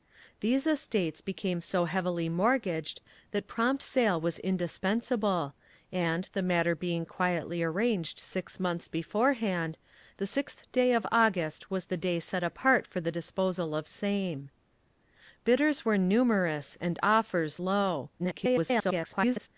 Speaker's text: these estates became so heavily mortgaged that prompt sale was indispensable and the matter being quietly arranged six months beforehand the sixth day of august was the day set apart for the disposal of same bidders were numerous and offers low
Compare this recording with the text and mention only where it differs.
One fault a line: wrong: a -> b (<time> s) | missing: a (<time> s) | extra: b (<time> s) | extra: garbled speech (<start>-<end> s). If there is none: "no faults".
extra: garbled speech (18.2-19.5 s)